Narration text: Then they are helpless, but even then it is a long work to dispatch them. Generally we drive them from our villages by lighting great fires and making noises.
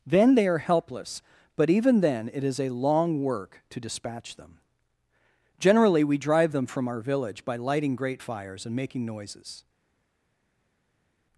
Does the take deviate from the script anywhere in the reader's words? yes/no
yes